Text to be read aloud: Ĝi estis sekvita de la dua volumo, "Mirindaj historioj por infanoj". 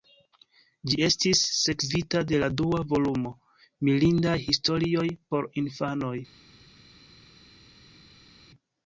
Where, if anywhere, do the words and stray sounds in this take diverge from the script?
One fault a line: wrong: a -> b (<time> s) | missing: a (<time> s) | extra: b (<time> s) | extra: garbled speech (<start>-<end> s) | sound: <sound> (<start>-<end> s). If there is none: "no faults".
no faults